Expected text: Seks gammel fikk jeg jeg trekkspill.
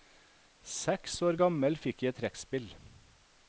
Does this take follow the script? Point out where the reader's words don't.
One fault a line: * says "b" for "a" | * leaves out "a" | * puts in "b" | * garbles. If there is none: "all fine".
* puts in "år"
* leaves out "jeg"